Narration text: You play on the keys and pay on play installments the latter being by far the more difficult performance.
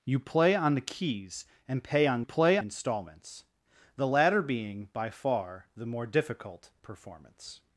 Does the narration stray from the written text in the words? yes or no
no